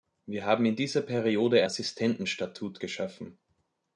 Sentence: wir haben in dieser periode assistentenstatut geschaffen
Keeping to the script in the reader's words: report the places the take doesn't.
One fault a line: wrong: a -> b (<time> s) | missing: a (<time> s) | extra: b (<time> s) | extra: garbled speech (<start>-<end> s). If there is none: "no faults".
no faults